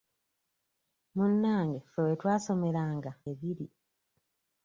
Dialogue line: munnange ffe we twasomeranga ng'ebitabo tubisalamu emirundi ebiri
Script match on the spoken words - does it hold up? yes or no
no